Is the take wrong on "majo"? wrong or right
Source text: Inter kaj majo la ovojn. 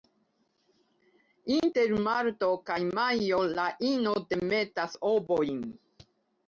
right